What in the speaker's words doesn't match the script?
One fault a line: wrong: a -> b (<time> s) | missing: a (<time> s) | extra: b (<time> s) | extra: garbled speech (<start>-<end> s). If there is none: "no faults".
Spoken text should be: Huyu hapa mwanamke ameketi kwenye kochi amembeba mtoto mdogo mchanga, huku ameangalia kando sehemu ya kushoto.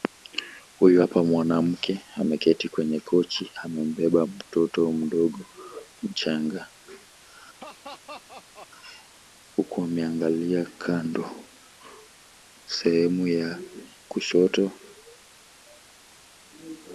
no faults